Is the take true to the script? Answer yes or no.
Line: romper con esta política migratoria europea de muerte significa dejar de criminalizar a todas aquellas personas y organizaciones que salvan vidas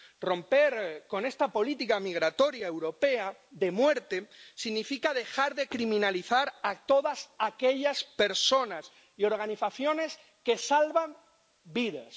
yes